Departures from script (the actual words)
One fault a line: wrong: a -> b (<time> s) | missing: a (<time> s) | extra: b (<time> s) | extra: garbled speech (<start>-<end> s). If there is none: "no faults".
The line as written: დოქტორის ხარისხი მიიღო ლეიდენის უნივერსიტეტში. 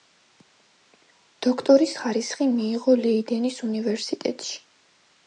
no faults